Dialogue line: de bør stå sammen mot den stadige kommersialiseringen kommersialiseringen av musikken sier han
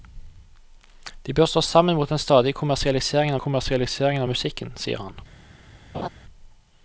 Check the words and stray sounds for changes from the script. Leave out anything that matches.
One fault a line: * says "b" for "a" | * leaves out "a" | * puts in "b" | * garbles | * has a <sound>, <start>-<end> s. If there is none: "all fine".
* has a laugh, 5.9-6.1 s